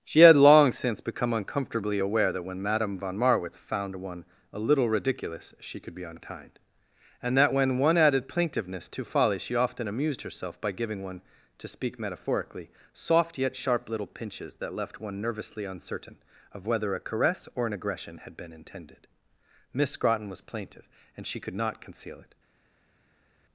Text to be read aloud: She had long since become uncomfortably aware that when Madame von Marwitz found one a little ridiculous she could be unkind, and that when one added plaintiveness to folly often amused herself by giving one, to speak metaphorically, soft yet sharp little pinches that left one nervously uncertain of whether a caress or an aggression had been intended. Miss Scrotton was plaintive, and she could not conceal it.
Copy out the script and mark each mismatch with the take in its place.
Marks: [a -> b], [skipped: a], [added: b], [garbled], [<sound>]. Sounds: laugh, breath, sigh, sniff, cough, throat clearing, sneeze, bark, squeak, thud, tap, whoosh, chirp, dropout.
She had long since become uncomfortably aware that when Madame von Marwitz found one a little ridiculous she could be unkind, and that when one added plaintiveness to folly [added: she] often amused herself by giving one, to speak metaphorically, soft yet sharp little pinches that left one nervously uncertain of whether a caress or an aggression had been intended. Miss Scrotton was plaintive, and she could not conceal it.